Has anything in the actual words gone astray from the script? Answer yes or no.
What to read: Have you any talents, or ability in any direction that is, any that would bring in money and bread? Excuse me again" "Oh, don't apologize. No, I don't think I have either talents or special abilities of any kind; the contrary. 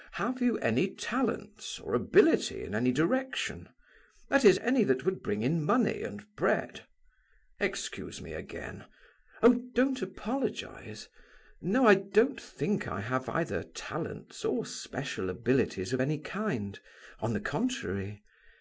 yes